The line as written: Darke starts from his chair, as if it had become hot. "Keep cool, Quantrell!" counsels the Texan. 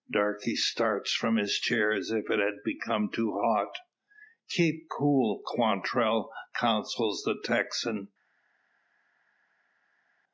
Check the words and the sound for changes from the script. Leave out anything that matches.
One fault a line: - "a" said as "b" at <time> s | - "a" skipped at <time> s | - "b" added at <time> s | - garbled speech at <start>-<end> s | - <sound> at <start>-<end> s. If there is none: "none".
- "too" added at 3.1 s